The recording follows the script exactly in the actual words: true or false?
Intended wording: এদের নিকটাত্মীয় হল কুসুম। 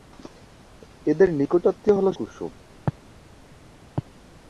true